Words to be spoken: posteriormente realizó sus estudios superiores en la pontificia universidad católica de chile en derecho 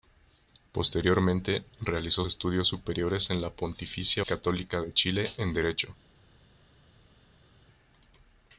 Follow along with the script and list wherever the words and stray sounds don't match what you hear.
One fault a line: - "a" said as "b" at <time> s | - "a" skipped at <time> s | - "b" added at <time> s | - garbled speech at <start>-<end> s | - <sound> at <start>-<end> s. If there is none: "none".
- "sus" skipped at 2.2 s
- "universidad" skipped at 4.2 s